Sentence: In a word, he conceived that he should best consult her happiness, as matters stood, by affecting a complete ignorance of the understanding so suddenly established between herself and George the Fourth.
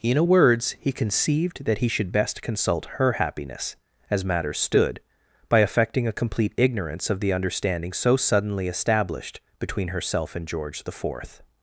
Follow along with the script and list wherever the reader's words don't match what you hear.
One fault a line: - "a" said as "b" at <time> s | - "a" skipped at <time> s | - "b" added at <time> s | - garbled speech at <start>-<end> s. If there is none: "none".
- "word" said as "words" at 0.2 s